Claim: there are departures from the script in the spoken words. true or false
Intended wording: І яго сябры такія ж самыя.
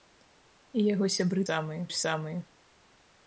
true